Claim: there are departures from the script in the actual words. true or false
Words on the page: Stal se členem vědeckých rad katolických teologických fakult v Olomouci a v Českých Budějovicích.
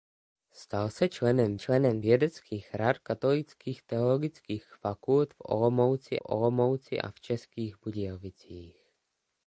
true